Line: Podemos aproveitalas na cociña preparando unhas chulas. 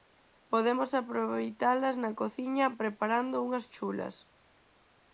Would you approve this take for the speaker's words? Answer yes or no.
yes